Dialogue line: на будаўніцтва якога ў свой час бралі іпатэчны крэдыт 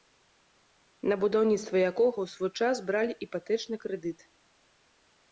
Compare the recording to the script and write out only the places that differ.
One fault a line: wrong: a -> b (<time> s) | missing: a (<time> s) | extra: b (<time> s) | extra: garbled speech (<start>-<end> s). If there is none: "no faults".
no faults